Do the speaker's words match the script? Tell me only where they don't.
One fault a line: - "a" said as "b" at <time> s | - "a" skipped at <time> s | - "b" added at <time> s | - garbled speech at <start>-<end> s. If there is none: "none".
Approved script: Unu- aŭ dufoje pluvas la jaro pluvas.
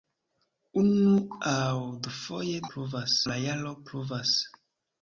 none